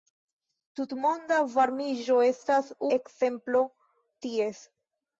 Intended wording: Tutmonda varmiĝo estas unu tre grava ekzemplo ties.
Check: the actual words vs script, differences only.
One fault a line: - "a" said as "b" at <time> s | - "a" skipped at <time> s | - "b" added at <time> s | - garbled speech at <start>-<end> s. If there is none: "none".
- "unu tre grava" skipped at 2.7 s